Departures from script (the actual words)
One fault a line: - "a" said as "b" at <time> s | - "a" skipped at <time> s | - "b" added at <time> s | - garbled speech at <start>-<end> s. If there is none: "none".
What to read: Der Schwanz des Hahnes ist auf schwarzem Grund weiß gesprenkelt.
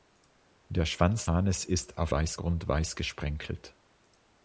- "des" skipped at 1.3 s
- "schwarzem" said as "weiß" at 2.1 s